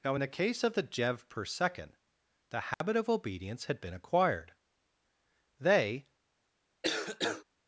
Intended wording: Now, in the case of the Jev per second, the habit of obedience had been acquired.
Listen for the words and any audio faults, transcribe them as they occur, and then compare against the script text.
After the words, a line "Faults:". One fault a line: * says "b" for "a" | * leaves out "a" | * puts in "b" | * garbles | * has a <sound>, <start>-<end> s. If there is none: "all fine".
Now, in the case of the Jev per second, the habit of obedience had been acquired. They
Faults:
* has a dropout, 2.7-2.8 s
* puts in "They"
* has a cough, 6.8-7.4 s